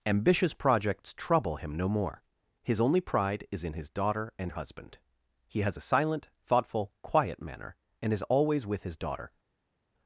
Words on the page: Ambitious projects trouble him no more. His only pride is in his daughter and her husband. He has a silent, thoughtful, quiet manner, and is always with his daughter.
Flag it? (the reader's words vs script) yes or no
yes